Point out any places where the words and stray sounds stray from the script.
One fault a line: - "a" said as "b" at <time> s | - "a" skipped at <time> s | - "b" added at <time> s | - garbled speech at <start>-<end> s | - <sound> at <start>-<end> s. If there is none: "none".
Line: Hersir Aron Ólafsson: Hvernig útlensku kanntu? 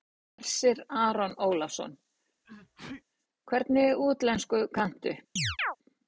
- sneeze at 2.4-3.0 s
- chirp at 5.4-5.8 s